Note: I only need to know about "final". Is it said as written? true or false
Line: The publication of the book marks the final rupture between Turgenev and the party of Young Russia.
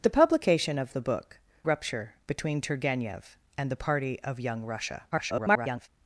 false